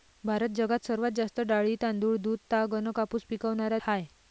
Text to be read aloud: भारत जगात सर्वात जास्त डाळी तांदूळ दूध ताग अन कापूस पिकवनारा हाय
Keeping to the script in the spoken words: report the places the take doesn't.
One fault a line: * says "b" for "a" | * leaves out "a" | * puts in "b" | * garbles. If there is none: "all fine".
all fine